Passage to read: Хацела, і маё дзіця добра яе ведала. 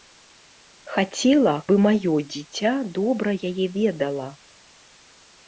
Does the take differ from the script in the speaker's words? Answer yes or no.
no